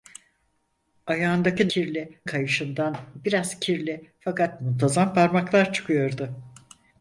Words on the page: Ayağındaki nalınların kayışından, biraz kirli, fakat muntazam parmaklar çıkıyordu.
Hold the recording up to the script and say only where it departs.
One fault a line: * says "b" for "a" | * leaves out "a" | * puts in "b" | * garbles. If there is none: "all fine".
* says "kirli" for "nalınların"